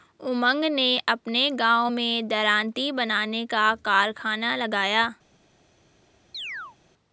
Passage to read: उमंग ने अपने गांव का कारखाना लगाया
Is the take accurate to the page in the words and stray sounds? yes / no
no